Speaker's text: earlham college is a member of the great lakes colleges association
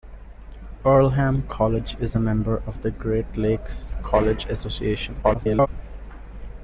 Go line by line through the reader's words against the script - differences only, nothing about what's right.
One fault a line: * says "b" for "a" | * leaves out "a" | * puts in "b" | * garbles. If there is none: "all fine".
* garbles